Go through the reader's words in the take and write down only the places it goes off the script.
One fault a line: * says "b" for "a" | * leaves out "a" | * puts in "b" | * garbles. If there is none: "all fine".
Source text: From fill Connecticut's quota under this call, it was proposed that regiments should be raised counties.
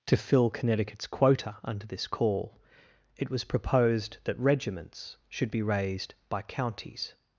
* says "To" for "From"
* puts in "by"